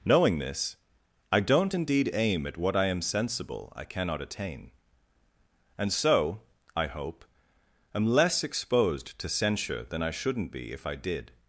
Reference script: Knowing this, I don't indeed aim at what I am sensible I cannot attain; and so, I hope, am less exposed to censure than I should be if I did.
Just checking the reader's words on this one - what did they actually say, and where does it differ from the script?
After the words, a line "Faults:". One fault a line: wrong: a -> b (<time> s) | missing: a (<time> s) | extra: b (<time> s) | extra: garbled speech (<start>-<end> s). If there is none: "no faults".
Knowing this, I don't indeed aim at what I am sensible I cannot attain; and so, I hope, am less exposed to censure than I shouldn't be if I did.
Faults:
wrong: should -> shouldn't (10.1 s)